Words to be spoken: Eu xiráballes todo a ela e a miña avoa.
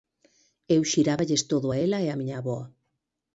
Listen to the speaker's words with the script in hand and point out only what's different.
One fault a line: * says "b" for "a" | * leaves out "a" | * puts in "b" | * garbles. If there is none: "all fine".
all fine